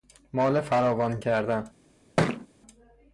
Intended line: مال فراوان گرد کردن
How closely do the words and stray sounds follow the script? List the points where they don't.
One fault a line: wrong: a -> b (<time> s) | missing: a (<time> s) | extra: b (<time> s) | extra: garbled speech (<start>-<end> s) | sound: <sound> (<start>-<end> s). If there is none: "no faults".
missing: گرد (1.2 s)
sound: thud (2.2-2.5 s)